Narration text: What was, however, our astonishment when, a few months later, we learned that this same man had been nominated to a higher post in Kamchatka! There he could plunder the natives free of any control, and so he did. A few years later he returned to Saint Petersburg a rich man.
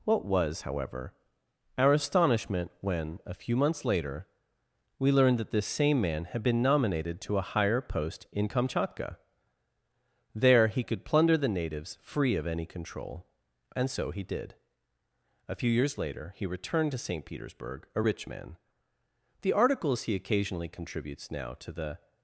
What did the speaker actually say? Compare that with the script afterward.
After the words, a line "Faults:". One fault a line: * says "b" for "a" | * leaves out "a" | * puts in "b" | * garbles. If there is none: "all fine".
What was, however, our astonishment when, a few months later, we learned that this same man had been nominated to a higher post in Kamchatka! There he could plunder the natives free of any control, and so he did. A few years later he returned to Saint Petersburg a rich man. The articles he occasionally contributes now to the
Faults:
* puts in "The articles he occasionally contributes now to the"